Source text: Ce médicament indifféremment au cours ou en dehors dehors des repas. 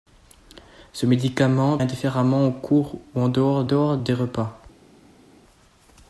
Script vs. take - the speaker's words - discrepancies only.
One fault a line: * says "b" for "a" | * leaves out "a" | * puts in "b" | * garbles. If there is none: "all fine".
all fine